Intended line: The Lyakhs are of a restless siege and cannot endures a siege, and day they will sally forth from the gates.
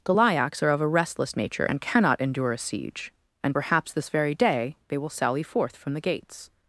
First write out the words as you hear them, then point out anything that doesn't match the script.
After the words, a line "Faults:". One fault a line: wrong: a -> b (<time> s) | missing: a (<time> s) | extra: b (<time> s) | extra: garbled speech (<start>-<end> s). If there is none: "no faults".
The Lyakhs are of a restless nature and cannot endure a siege, and perhaps this very day they will sally forth from the gates.
Faults:
wrong: siege -> nature (1.3 s)
wrong: endures -> endure (2.2 s)
extra: perhaps this very (3.5 s)